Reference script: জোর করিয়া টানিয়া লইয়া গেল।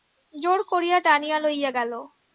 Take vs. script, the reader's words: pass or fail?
pass